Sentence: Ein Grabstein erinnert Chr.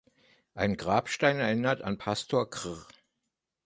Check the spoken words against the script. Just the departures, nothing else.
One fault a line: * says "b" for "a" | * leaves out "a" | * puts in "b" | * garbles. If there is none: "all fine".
* puts in "an Pastor"